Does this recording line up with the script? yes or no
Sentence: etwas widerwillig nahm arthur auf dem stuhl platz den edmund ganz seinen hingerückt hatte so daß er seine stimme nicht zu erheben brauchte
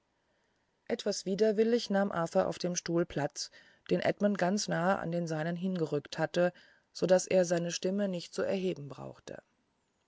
no